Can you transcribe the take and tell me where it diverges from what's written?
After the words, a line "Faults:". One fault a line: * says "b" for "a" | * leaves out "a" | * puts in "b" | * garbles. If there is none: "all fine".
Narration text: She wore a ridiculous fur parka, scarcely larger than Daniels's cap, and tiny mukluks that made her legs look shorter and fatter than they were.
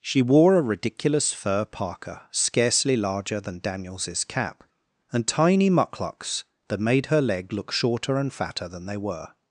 She wore a ridiculous fur parka, scarcely larger than Daniels's cap, and tiny mukluks that made her leg look shorter and fatter than they were.
Faults:
* says "leg" for "legs"